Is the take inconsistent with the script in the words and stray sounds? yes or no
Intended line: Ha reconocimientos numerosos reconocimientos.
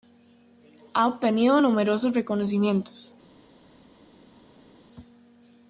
yes